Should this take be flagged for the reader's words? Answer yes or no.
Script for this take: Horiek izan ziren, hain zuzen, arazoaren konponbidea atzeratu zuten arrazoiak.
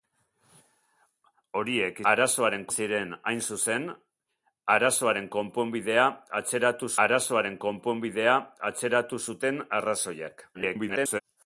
yes